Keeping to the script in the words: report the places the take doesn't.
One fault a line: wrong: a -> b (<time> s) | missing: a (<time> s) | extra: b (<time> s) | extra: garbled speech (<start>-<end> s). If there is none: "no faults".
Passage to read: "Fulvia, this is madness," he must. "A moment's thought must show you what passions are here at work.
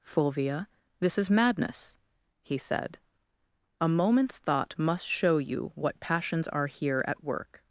wrong: must -> said (2.6 s)